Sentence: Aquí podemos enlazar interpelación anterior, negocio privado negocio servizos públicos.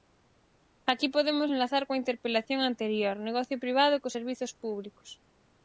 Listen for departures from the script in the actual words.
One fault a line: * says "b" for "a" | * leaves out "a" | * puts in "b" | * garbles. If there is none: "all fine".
* puts in "coa"
* says "cos" for "negocio"